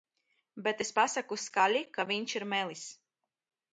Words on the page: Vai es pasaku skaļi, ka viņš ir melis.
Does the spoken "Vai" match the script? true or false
false